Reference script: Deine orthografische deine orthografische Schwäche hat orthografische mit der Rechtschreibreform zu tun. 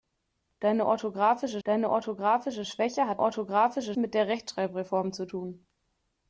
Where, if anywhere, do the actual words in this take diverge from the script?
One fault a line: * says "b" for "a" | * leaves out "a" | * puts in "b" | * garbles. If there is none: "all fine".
all fine